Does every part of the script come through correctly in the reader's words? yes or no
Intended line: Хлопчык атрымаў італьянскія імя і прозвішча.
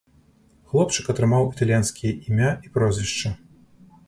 yes